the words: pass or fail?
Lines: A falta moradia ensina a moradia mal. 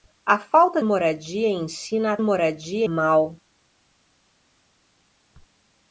pass